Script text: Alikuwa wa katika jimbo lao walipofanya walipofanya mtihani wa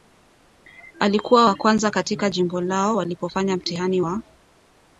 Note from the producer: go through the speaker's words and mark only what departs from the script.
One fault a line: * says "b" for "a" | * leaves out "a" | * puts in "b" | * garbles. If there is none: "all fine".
* puts in "kwanza"
* leaves out "walipofanya"